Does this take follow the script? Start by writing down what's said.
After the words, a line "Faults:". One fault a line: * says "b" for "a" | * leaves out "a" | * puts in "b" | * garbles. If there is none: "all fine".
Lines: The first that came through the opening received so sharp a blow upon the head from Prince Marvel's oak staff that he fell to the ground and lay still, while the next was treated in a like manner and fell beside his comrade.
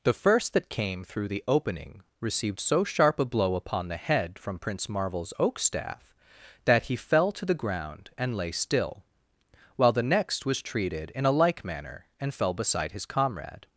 The first that came through the opening received so sharp a blow upon the head from Prince Marvel's oak staff that he fell to the ground and lay still, while the next was treated in a like manner and fell beside his comrade.
Faults:
all fine